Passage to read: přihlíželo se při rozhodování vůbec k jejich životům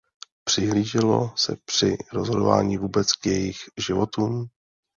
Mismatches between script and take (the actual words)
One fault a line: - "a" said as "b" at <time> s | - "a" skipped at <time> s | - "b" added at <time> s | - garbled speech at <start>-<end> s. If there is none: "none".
none